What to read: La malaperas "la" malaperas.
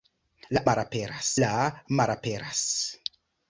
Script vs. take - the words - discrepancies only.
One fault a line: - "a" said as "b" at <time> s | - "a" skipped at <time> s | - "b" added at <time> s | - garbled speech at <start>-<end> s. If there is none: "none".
none